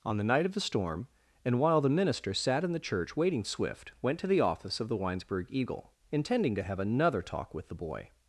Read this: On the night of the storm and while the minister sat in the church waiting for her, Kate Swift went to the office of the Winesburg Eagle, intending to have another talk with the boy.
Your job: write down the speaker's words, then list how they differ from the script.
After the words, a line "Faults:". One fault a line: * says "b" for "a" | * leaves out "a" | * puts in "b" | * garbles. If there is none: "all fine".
On the night of the storm and while the minister sat in the church waiting Swift went to the office of the Winesburg Eagle, intending to have another talk with the boy.
Faults:
* leaves out "for her Kate"